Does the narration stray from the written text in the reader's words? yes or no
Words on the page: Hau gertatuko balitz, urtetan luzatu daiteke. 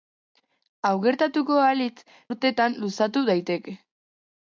no